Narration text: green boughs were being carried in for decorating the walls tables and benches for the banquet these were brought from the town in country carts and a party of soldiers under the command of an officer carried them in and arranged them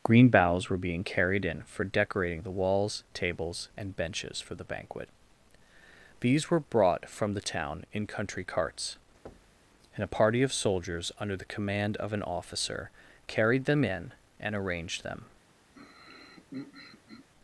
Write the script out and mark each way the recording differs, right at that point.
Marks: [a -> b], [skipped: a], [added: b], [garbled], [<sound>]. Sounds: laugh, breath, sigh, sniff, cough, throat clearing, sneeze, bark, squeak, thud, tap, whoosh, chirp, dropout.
green boughs were being carried in for decorating the walls tables and benches for the banquet these were brought from the town in country carts [thud] and a party of soldiers under the command of an officer carried them in and arranged them [throat clearing]